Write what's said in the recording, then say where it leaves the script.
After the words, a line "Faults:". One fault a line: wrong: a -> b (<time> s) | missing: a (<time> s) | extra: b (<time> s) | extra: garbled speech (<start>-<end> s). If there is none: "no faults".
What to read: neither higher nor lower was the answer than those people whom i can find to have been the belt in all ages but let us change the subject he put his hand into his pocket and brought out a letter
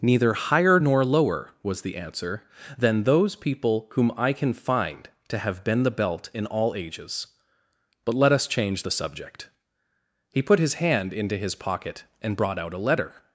neither higher nor lower was the answer than those people whom i can find to have been the belt in all ages but let us change the subject he put his hand into his pocket and brought out a letter
Faults:
no faults